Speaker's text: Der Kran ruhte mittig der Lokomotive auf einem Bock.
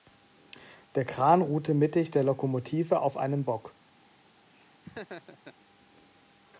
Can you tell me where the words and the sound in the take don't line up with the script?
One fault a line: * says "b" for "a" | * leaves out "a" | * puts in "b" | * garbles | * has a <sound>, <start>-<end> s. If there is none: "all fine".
* has a laugh, 4.5-5.5 s